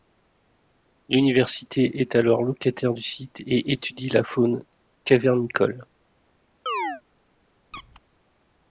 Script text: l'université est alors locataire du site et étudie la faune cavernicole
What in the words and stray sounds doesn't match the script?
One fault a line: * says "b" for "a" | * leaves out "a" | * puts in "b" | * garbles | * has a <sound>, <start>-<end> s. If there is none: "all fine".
* has a chirp, 6.7-7.0 s
* has a squeak, 7.7-8.0 s